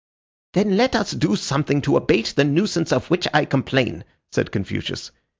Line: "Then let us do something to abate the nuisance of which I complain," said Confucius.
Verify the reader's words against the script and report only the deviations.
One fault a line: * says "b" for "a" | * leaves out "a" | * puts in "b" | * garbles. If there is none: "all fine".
all fine